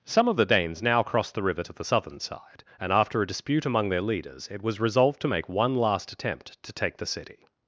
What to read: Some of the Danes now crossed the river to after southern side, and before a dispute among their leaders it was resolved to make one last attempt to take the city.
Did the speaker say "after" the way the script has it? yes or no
no